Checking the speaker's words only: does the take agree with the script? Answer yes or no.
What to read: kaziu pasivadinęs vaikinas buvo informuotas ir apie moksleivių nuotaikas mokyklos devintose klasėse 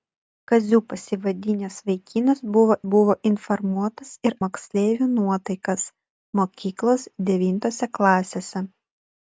no